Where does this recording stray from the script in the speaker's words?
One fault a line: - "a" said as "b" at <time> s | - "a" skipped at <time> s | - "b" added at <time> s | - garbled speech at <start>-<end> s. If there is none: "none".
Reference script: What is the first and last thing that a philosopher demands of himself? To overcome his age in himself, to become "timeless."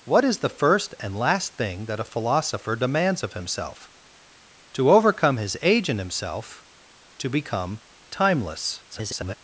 - garbled speech at 8.9-9.4 s